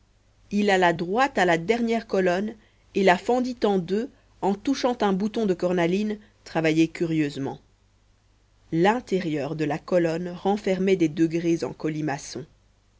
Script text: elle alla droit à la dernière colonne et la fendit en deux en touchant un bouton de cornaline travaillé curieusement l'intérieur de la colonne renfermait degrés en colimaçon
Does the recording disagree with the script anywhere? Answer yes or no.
yes